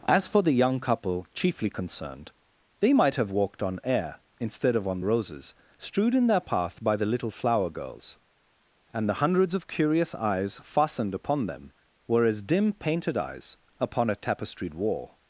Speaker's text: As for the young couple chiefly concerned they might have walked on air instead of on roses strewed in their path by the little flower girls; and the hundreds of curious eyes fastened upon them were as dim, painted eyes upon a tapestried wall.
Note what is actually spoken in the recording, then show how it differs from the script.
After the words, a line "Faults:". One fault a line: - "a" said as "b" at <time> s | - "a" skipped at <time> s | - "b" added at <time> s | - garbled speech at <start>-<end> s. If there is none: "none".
As for the young couple chiefly concerned they might have walked on air instead of on roses strewed in their path by the little flower girls; and the hundreds of curious eyes fastened upon them were as dim, painted eyes upon a tapestried wall.
Faults:
none